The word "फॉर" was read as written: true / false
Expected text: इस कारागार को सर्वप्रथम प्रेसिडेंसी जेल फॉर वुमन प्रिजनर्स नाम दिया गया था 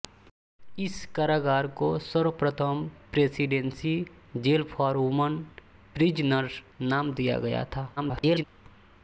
true